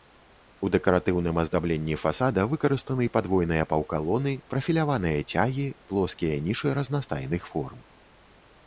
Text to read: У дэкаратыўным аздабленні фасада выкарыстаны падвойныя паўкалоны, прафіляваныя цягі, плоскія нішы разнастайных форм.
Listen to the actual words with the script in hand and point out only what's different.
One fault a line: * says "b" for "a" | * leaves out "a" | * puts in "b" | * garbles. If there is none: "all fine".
all fine